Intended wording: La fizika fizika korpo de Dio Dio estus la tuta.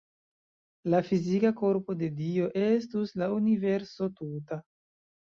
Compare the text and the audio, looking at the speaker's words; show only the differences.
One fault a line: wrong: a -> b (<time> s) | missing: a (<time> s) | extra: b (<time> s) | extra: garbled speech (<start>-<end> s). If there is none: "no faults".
missing: fizika (1.5 s)
missing: Dio (2.5 s)
extra: universo (3.4 s)